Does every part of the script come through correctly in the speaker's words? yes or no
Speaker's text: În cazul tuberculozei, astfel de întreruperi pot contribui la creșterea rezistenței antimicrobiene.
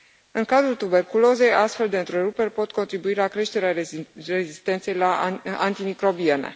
no